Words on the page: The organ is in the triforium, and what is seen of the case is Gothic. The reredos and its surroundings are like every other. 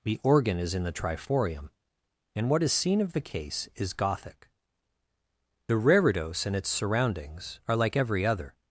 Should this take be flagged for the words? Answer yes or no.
no